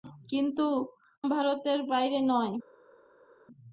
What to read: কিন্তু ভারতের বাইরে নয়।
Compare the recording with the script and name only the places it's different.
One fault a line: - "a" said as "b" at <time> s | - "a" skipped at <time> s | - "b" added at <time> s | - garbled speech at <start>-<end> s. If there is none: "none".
none